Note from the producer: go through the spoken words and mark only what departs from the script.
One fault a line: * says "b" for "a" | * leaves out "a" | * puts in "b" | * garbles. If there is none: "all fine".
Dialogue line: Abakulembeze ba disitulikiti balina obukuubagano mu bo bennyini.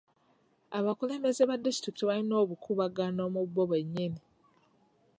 all fine